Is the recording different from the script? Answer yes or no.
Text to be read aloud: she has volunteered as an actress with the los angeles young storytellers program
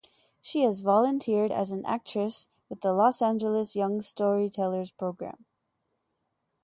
no